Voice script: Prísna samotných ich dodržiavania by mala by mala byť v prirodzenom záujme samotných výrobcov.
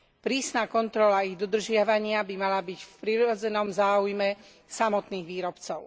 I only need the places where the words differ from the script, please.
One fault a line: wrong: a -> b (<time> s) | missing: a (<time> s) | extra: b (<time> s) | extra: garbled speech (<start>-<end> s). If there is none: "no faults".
wrong: samotných -> kontrola (0.7 s)
missing: by mala (2.6 s)